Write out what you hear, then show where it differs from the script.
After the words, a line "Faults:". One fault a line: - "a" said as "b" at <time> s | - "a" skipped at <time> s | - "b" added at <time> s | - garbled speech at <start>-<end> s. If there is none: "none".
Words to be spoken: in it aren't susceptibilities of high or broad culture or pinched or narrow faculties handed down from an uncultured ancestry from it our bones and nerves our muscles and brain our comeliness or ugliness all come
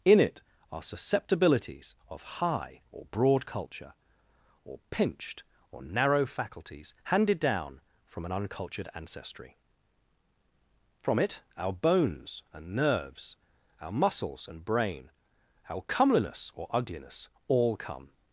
in it are susceptibilities of high or broad culture or pinched or narrow faculties handed down from an uncultured ancestry from it our bones and nerves our muscles and brain our comeliness or ugliness all come
Faults:
- "aren't" said as "are" at 0.7 s